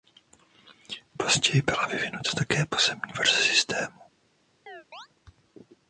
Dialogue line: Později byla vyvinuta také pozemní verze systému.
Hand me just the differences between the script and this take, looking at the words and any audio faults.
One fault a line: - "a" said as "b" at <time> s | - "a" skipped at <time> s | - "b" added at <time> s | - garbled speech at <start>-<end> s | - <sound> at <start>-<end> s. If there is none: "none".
- chirp at 4.7-5.1 s